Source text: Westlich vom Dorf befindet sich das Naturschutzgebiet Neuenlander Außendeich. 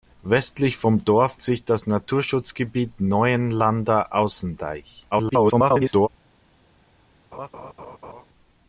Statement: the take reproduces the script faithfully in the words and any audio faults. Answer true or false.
false